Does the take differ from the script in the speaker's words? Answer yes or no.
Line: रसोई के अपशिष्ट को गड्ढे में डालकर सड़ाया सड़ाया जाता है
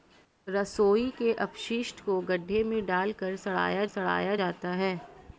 no